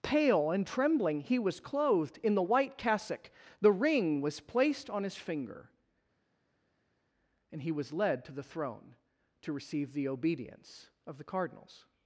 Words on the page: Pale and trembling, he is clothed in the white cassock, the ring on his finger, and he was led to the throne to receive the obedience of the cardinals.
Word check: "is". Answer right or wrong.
wrong